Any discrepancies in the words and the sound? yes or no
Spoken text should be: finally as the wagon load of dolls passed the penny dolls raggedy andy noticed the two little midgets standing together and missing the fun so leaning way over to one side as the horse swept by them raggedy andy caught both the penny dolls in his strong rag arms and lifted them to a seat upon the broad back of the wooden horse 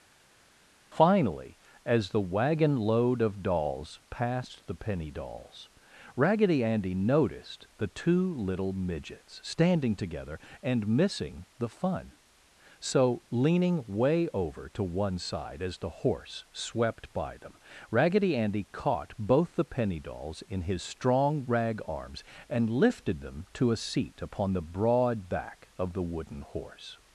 no